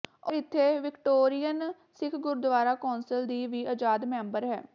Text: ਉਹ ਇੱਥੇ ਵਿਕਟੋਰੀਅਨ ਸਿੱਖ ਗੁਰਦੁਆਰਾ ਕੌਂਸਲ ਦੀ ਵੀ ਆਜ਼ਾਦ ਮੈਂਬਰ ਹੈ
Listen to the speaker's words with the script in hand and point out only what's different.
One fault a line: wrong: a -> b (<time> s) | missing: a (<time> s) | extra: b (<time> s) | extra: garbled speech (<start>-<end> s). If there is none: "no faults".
no faults